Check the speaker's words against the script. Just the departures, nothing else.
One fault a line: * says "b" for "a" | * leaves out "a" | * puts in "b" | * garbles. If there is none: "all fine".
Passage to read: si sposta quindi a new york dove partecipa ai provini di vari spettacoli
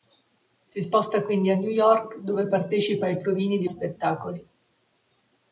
* leaves out "vari"